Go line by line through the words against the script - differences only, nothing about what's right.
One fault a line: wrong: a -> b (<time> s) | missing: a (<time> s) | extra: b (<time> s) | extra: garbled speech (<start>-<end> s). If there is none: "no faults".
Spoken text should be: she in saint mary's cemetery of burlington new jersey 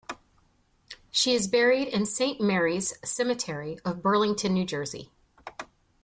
extra: is buried (1.3 s)